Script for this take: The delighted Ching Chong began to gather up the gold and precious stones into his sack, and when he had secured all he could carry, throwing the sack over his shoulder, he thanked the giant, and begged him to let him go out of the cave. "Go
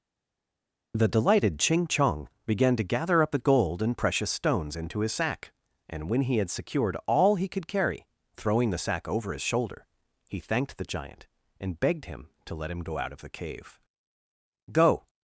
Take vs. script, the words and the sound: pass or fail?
pass